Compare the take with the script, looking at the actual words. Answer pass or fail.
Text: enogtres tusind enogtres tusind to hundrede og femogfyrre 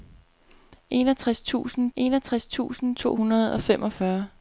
pass